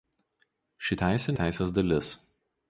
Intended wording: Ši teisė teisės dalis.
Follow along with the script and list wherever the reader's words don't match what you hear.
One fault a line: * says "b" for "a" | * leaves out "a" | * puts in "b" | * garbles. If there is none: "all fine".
all fine